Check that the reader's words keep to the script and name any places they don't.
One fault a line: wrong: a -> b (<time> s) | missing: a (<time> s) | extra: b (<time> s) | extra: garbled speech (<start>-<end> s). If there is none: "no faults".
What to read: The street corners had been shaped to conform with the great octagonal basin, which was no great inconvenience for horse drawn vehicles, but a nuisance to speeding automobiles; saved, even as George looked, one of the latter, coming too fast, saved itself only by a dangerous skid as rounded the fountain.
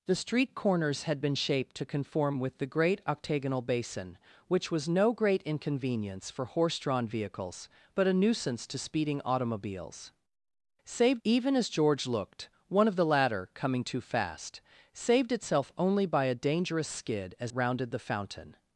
no faults